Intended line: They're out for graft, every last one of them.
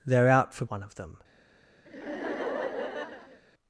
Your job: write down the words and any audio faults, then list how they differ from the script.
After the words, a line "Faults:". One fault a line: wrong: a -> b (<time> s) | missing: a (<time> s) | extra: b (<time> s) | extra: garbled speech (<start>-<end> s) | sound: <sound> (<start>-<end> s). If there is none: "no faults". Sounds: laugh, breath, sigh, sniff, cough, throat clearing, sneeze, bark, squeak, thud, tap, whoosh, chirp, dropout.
They're out for one of them.
Faults:
missing: graft every last (0.7 s)
sound: laugh (1.9-3.4 s)